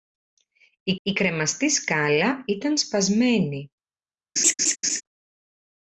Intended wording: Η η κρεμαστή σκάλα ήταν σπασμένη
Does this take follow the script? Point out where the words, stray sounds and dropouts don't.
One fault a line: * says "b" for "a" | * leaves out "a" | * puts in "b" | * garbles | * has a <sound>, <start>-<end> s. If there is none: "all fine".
* has a laugh, 4.4-5.0 s